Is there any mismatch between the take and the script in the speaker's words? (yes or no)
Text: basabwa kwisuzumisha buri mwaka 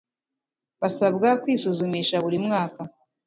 no